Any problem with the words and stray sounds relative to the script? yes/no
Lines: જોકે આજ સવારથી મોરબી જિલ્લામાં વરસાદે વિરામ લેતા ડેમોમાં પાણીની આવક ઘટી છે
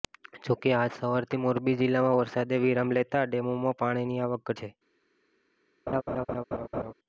yes